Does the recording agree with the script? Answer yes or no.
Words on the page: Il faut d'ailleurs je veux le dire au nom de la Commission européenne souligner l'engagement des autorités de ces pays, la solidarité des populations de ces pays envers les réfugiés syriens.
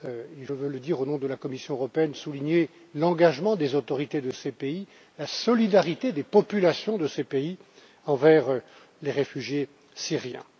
no